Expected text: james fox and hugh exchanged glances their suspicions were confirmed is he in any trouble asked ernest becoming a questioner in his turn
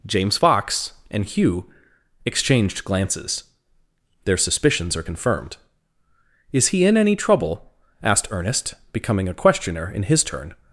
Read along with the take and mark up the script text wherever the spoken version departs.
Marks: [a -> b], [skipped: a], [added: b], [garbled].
james fox and hugh exchanged glances their suspicions [were -> are] confirmed is he in any trouble asked ernest becoming a questioner in his turn